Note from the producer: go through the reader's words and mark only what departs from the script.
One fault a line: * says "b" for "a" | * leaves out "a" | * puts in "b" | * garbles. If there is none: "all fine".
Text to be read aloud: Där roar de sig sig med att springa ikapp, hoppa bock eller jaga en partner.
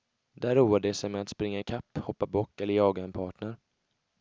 * leaves out "sig"